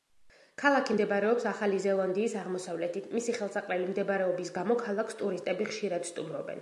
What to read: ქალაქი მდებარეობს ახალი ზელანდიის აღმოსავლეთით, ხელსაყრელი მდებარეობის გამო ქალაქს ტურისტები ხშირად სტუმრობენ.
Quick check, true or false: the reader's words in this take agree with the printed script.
false